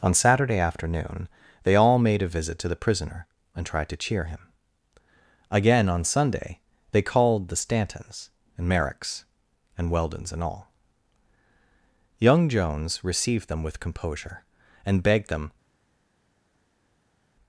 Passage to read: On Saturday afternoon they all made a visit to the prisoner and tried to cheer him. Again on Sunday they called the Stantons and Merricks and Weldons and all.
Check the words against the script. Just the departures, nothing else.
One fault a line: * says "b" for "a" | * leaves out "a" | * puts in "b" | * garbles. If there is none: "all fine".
* puts in "Young Jones received them with composure and begged them"